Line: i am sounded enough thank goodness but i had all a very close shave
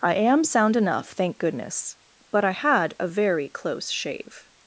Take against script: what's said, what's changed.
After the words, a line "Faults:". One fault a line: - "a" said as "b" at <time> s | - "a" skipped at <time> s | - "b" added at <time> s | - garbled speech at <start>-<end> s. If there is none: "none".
i am sound enough thank goodness but i had a very close shave
Faults:
- "sounded" said as "sound" at 0.4 s
- "all" skipped at 2.9 s